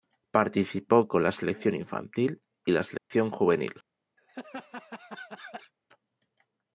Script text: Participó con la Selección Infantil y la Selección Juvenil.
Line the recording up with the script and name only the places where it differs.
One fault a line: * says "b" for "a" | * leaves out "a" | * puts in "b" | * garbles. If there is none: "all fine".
all fine